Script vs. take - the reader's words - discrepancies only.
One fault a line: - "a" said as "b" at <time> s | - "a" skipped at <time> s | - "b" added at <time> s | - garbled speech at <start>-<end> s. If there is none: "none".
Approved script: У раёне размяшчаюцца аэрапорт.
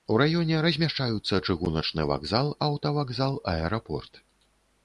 - "чыгуначны вакзал аўтавакзал" added at 1.5 s